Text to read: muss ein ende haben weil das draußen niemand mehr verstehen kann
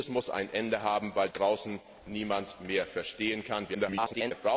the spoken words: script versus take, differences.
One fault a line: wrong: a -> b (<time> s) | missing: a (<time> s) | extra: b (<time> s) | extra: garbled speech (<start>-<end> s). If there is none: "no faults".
missing: das (1.3 s)
extra: garbled speech (3.7-4.3 s)